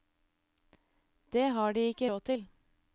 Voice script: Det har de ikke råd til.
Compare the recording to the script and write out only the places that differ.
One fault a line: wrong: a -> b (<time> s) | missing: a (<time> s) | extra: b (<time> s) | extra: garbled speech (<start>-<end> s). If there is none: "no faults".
no faults